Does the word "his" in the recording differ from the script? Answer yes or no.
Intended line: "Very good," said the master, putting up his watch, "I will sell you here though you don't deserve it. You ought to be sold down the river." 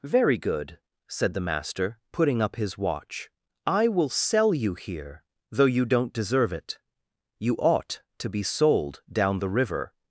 no